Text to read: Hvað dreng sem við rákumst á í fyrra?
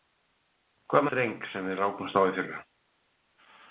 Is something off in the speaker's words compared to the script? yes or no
no